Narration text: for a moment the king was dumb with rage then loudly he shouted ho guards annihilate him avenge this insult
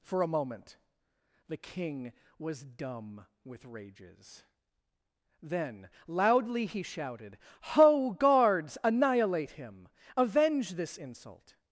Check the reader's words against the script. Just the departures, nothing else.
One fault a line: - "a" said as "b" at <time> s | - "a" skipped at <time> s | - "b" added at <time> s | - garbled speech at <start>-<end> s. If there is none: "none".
- "rage" said as "rages" at 3.6 s